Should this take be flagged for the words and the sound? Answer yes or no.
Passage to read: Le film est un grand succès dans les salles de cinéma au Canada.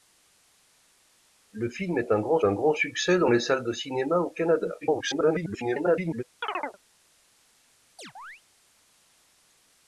yes